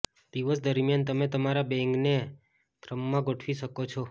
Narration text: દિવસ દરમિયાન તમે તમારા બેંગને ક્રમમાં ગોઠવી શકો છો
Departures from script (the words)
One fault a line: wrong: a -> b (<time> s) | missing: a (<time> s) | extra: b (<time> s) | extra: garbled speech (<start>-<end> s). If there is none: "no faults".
no faults